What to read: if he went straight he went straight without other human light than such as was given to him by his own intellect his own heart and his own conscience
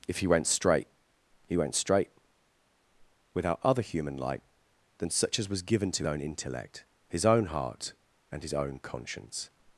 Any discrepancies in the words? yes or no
yes